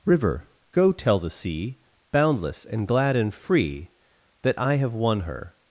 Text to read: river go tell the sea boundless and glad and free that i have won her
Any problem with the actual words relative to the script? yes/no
no